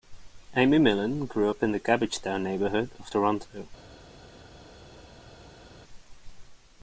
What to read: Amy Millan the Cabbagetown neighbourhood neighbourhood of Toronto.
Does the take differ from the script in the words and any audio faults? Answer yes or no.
yes